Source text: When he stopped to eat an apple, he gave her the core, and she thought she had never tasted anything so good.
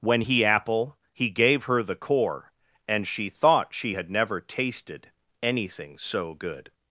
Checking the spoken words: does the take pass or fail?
fail